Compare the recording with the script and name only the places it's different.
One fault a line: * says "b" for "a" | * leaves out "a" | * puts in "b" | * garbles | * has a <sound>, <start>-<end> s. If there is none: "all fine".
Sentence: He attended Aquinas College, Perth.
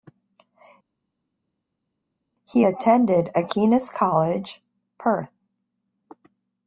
all fine